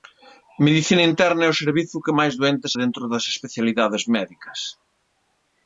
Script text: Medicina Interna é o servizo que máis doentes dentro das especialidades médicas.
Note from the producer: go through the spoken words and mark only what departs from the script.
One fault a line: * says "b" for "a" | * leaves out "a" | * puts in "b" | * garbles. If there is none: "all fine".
all fine